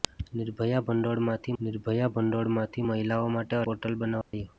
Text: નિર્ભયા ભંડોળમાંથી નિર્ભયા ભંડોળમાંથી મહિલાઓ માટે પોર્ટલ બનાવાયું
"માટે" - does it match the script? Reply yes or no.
yes